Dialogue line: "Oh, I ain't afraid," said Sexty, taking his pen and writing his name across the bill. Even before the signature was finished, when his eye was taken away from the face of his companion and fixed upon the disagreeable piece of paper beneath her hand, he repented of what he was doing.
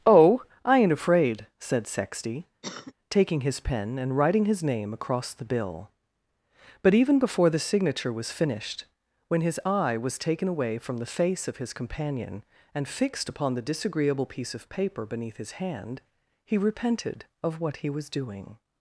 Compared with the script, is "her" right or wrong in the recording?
wrong